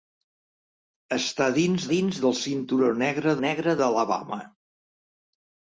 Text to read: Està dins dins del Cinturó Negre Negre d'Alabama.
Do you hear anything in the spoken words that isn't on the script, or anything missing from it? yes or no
no